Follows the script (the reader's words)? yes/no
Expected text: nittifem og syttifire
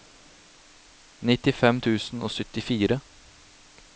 no